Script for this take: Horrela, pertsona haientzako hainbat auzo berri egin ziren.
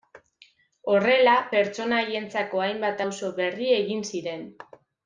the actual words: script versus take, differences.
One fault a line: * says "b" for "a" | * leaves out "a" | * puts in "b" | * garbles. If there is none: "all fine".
all fine